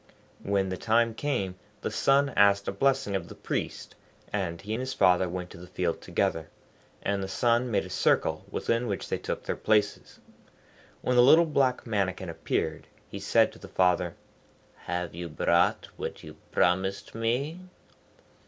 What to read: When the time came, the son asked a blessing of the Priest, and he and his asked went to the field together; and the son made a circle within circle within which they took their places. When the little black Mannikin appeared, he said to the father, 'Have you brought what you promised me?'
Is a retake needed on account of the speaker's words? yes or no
yes